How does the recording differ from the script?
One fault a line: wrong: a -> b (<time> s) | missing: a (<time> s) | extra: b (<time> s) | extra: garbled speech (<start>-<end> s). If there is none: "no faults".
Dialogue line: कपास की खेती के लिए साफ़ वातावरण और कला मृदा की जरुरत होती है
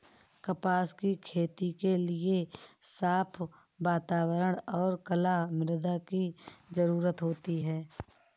no faults